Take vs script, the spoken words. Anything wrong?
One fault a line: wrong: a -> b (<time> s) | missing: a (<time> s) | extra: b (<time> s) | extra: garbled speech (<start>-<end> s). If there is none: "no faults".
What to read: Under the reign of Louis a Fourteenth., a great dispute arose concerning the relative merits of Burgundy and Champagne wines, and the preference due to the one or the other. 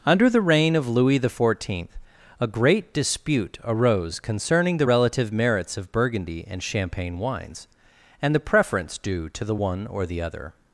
wrong: a -> the (1.2 s)